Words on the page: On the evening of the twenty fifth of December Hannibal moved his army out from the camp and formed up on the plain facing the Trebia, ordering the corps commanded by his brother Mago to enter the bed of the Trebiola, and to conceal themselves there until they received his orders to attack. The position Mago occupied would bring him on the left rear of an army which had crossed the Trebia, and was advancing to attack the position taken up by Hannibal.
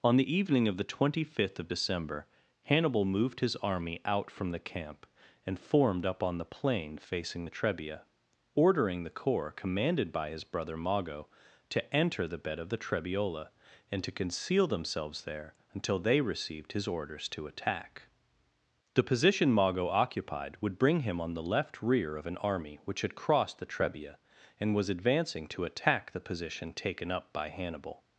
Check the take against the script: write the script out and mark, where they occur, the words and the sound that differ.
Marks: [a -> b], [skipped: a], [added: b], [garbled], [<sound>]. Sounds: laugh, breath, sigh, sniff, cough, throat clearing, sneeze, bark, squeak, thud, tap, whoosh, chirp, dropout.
On the evening of the twenty fifth of December Hannibal moved his army out from the camp and formed up on the plain facing the Trebia, ordering the corps commanded by his brother Mago to enter the bed of the Trebiola, and to conceal themselves there until they received his orders to attack. The position Mago occupied would bring him on the left rear of an army which had crossed the Trebia, and was advancing to attack the position taken up by Hannibal.